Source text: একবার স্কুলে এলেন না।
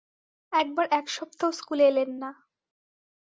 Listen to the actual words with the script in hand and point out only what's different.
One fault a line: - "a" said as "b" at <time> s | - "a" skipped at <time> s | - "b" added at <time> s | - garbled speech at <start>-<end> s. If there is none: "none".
- "এক সপ্তাহ" added at 0.9 s